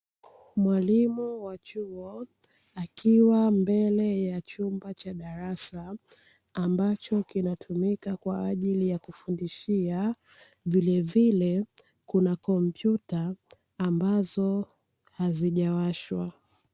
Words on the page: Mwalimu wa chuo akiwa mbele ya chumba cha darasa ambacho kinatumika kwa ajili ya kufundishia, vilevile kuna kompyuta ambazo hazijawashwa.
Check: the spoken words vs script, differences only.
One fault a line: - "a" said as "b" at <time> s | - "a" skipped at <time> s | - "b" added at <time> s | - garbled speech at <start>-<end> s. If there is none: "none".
none